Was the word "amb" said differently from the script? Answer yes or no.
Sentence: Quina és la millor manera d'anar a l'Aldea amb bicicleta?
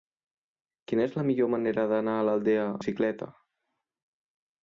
yes